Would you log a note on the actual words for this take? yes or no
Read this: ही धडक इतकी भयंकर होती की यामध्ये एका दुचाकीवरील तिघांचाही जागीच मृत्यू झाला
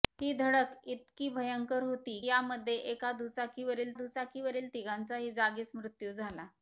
yes